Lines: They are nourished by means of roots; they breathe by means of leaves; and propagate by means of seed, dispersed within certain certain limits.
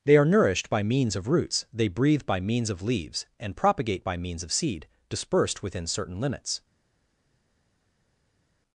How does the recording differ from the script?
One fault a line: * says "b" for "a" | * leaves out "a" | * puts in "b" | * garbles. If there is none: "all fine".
* leaves out "certain"